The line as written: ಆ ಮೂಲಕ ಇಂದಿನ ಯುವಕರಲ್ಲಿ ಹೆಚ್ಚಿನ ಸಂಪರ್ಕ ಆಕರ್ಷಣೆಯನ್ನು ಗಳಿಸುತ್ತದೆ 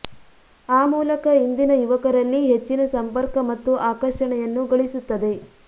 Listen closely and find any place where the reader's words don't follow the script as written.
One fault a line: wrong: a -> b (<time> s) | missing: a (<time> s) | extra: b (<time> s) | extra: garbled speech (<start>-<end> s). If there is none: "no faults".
extra: ಮತ್ತು (3.5 s)